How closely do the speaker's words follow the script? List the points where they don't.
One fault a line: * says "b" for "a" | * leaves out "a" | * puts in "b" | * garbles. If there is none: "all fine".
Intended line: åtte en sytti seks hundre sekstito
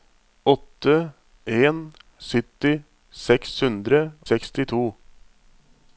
all fine